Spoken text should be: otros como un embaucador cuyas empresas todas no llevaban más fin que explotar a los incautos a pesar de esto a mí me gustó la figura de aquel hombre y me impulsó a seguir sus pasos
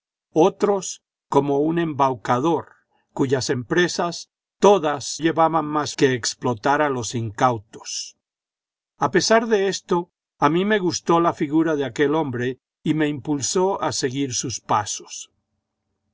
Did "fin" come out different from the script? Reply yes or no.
yes